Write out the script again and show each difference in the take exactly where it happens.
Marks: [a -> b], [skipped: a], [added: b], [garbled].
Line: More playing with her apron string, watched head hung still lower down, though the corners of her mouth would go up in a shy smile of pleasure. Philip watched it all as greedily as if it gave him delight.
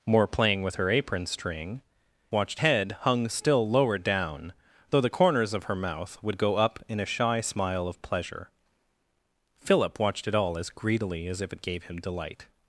More playing with her apron string, watched head hung still lower down, though the corners of her mouth would go up in a shy smile of pleasure. Philip watched it all as greedily as if it gave him delight.